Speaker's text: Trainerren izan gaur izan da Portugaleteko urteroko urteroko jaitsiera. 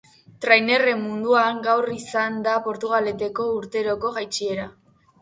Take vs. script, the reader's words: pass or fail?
fail